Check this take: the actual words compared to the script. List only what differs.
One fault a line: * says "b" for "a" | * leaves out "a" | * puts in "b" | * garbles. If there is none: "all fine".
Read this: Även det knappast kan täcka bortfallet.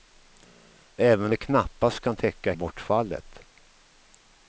all fine